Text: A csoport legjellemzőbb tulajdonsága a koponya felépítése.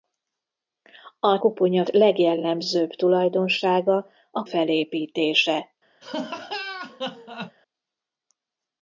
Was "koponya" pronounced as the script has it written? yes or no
no